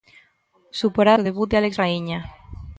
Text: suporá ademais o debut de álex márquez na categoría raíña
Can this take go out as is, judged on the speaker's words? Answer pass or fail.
fail